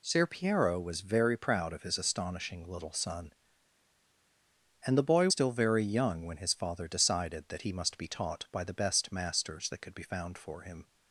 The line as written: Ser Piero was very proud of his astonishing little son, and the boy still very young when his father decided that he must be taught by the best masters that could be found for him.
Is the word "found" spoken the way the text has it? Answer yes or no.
yes